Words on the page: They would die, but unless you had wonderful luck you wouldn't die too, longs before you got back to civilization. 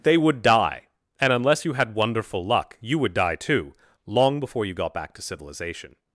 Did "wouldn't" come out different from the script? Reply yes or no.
yes